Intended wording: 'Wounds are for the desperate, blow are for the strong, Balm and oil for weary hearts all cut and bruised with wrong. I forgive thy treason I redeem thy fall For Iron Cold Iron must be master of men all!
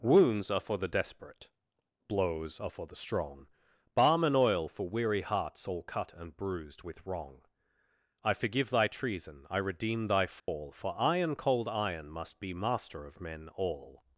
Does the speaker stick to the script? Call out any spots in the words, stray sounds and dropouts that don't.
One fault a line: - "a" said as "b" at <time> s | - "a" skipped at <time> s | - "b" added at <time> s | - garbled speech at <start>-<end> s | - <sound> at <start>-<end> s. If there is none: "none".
- "blow" said as "blows" at 2.1 s
- dropout at 10.4-10.5 s